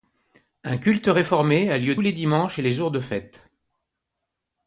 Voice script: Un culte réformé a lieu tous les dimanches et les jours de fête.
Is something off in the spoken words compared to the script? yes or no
yes